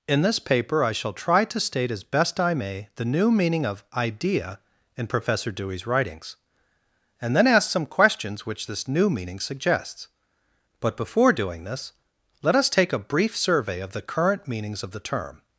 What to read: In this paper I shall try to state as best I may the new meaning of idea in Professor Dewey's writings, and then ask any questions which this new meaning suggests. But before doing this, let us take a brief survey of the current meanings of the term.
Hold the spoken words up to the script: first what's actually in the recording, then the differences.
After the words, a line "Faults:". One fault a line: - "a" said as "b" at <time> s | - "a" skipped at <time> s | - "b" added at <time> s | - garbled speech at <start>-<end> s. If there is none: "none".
In this paper I shall try to state as best I may the new meaning of idea in Professor Dewey's writings, and then ask some questions which this new meaning suggests. But before doing this, let us take a brief survey of the current meanings of the term.
Faults:
- "any" said as "some" at 7.7 s